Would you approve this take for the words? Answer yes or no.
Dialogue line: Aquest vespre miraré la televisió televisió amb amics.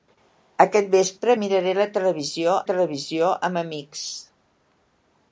yes